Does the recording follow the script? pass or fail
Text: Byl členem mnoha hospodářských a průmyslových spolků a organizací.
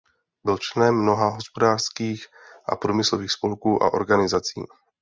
pass